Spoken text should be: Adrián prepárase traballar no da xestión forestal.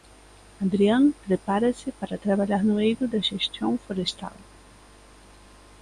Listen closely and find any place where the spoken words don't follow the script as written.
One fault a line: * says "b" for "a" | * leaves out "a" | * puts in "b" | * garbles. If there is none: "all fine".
* puts in "para"
* puts in "eido"